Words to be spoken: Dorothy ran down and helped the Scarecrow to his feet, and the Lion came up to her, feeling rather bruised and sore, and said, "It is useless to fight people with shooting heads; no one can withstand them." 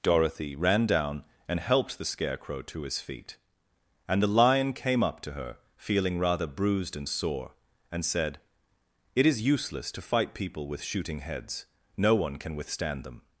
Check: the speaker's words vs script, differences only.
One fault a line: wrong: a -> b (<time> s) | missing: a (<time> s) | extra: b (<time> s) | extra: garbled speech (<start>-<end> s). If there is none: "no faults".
no faults